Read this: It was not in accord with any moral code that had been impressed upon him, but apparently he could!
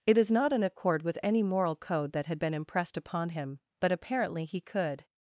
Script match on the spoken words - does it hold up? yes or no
no